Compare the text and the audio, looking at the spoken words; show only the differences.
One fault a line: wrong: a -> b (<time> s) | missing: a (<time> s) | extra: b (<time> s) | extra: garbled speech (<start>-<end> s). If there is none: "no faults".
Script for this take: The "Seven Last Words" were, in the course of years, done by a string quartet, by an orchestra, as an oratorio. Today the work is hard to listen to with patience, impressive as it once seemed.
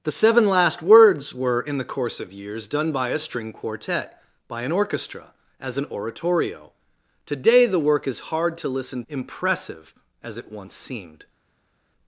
missing: to with patience (9.0 s)